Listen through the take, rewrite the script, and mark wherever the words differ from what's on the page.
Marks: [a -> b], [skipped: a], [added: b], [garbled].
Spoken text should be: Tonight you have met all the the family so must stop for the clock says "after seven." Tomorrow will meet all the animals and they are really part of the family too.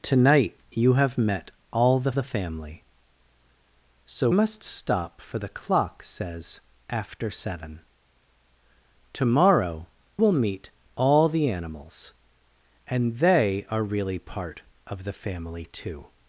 Tonight you have met all the the family so must stop for the clock says "after seven." Tomorrow will meet all the animals and they are really part of the family too.